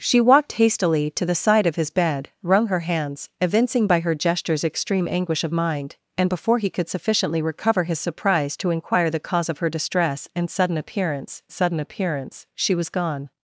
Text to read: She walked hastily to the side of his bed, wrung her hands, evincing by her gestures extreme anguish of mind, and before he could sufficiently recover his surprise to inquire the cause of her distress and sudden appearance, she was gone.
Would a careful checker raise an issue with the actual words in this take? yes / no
yes